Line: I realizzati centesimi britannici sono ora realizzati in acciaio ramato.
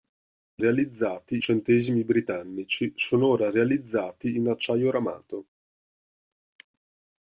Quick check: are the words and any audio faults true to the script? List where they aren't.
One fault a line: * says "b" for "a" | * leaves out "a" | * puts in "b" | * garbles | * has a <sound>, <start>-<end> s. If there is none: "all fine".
all fine